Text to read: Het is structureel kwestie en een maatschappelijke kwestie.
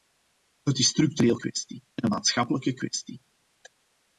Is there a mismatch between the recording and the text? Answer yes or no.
no